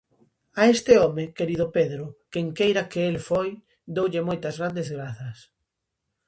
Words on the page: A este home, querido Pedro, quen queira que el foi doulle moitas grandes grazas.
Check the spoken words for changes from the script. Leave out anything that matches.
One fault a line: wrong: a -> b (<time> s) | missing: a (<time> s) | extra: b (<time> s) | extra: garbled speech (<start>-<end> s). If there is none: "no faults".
no faults